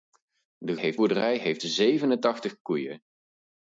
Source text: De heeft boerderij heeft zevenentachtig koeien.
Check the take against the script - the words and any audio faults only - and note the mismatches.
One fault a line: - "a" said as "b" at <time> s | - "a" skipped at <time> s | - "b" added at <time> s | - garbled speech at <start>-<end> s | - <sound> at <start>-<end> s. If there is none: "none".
none